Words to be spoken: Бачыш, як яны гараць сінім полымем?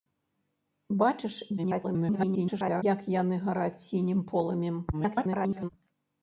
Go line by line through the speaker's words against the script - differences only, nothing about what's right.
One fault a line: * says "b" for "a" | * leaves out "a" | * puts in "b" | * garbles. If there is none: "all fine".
* garbles
* garbles